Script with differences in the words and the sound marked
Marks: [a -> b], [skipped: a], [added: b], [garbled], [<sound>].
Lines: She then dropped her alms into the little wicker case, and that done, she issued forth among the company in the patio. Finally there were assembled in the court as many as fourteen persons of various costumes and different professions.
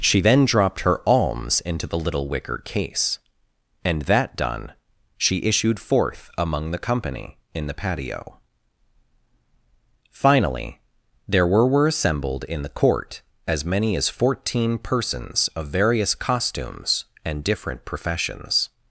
She then dropped her alms into the little wicker case, and that done, she issued forth among the company in the patio. Finally there were [added: were] assembled in the court as many as fourteen persons of various costumes and different professions.